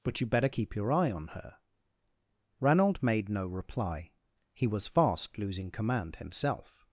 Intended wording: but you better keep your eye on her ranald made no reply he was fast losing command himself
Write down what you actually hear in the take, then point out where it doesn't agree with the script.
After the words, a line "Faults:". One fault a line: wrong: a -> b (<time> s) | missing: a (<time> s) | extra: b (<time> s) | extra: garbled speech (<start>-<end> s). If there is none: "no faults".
but you better keep your eye on her ranald made no reply he was fast losing command himself
Faults:
no faults